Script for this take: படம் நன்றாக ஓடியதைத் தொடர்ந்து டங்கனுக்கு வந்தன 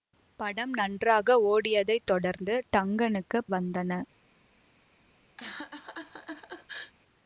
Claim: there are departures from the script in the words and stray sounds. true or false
true